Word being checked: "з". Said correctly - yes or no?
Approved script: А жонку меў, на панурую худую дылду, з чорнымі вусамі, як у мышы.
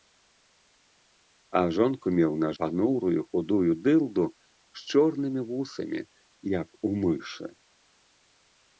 yes